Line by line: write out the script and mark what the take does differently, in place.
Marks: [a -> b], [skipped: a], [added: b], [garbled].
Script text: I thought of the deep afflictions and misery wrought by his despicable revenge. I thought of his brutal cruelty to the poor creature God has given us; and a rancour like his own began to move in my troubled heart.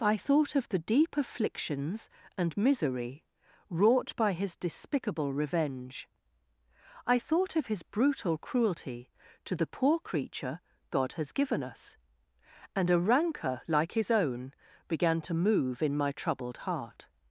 I thought of the deep afflictions and misery wrought by his despicable revenge. I thought of his brutal cruelty to the poor creature God has given us; and a rancour like his own began to move in my troubled heart.